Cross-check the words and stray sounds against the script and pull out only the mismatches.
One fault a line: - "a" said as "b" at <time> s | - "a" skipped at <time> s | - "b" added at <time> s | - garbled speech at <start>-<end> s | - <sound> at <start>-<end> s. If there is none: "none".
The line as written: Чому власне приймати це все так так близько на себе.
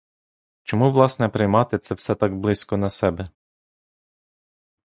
- "так" skipped at 2.4 s